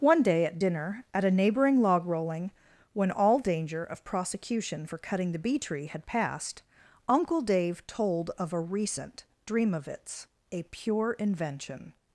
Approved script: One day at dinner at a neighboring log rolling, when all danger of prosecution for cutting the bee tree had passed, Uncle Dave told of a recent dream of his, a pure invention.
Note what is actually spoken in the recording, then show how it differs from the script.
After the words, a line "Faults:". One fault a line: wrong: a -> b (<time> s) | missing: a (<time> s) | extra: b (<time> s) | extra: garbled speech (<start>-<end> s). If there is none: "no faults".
One day at dinner at a neighboring log rolling, when all danger of prosecution for cutting the bee tree had passed, Uncle Dave told of a recent dream of its, a pure invention.
Faults:
wrong: his -> its (9.9 s)